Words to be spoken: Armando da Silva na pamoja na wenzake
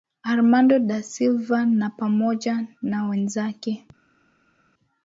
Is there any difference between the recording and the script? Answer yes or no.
no